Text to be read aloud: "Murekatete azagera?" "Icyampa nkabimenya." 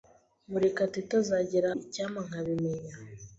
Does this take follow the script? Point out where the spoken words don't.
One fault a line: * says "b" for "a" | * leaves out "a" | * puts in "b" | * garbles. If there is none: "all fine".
all fine